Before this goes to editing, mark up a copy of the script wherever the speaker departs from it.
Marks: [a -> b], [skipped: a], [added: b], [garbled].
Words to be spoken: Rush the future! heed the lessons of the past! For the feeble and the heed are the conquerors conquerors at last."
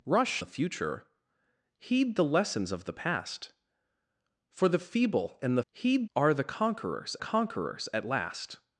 Rush the future! heed the lessons of the past! For the feeble and the heed are the conquerors conquerors at last."